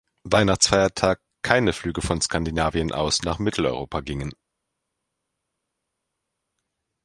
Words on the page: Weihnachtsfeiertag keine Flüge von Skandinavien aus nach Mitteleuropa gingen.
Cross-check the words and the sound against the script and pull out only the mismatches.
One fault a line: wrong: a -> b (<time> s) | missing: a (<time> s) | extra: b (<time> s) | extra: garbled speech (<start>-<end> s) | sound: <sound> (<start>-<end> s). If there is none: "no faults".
no faults